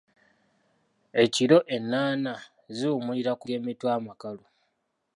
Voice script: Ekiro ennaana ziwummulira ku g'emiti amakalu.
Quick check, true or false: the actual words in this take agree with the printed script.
true